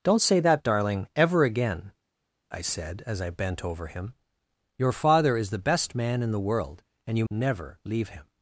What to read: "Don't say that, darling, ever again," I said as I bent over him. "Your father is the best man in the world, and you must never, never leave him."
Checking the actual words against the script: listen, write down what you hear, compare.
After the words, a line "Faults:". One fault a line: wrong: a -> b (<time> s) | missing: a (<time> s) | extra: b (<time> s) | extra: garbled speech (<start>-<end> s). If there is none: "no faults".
"Don't say that, darling, ever again," I said as I bent over him. "Your father is the best man in the world, and you never leave him."
Faults:
missing: must never (7.3 s)